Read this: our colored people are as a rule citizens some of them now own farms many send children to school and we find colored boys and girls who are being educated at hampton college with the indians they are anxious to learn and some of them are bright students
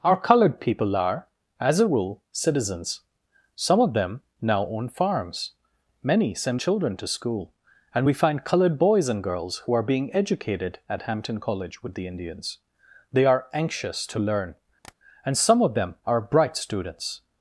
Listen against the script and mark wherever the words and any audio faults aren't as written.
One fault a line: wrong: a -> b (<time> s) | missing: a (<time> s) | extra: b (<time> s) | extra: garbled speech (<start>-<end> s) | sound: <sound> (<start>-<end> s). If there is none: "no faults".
sound: tap (14.8-14.9 s)